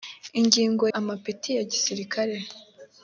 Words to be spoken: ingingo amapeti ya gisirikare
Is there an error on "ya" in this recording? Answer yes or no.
no